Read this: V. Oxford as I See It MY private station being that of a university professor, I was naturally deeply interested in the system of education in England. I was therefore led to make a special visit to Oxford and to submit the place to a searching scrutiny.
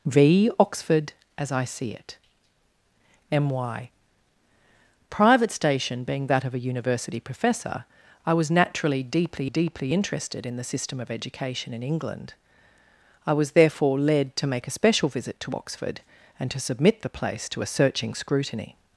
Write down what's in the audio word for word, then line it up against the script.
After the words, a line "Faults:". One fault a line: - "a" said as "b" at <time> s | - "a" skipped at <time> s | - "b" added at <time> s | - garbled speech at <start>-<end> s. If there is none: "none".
V. Oxford as I See It MY private station being that of a university professor, I was naturally deeply deeply interested in the system of education in England. I was therefore led to make a special visit to Oxford and to submit the place to a searching scrutiny.
Faults:
- "deeply" added at 9.4 s